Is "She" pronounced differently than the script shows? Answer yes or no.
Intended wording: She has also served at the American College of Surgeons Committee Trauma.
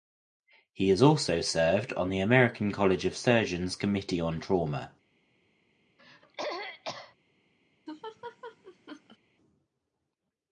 yes